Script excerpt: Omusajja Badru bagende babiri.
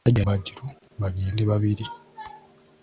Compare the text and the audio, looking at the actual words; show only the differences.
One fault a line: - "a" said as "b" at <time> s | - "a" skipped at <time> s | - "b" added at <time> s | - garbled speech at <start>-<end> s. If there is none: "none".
none